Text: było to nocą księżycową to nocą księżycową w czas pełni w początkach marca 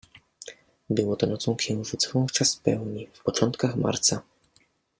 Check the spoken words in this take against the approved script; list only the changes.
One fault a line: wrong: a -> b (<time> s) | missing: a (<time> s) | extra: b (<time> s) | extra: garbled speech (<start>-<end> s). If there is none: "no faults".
missing: to nocą księżycową (2.3 s)